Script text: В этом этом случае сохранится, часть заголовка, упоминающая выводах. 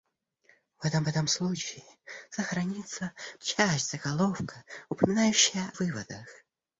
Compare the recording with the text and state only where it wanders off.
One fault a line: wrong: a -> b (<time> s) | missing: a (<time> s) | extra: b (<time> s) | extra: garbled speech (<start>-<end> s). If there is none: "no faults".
no faults